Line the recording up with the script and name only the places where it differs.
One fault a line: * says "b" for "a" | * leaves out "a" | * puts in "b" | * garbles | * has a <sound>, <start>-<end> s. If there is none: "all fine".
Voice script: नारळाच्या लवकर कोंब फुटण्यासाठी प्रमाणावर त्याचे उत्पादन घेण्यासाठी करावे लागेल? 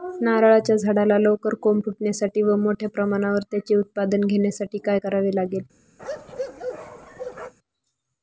* puts in "झाडाला"
* puts in "व मोठ्या"
* puts in "काय"
* has a bark, 6.0-7.5 s